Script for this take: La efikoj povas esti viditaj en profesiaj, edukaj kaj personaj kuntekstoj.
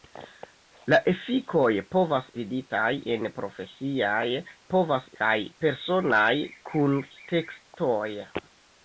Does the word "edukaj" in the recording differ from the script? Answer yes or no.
yes